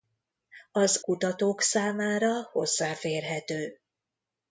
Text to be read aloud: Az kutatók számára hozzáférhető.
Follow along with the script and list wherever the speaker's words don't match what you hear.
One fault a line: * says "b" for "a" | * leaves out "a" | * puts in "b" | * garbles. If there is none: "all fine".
all fine